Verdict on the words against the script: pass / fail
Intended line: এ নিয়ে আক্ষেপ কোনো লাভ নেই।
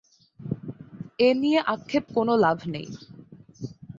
pass